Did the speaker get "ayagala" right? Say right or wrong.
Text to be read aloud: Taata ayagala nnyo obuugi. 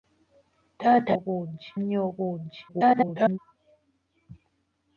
wrong